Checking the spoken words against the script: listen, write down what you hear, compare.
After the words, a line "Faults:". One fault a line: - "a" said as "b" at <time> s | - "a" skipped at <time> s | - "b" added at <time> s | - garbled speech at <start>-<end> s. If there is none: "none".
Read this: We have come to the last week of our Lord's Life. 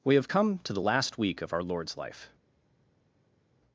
We have come to the last week of our Lord's Life.
Faults:
none